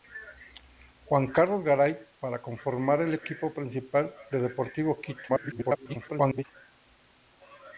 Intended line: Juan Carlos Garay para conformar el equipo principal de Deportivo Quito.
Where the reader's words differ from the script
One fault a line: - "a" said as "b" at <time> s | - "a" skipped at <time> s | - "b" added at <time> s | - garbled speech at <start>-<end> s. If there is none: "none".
- garbled speech at 5.3-6.4 s